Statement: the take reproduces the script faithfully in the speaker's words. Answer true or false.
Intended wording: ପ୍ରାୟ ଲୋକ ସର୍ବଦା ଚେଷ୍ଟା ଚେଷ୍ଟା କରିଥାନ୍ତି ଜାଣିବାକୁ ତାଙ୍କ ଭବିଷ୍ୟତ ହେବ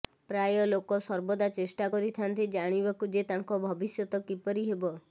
false